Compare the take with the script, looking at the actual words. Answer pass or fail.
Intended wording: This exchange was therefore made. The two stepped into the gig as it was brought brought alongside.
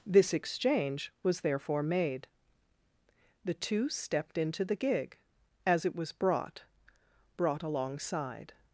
pass